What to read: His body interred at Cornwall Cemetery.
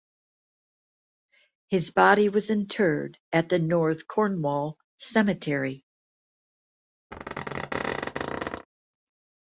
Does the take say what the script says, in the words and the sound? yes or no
no